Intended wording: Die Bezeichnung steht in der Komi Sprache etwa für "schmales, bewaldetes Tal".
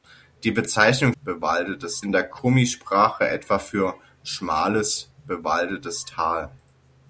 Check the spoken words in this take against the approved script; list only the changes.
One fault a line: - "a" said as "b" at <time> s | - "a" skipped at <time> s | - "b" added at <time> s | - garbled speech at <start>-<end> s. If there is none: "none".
- "steht" said as "bewaldetes" at 1.2 s